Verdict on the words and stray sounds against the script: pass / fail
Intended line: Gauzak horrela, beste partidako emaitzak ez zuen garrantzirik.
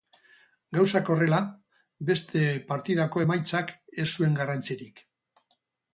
pass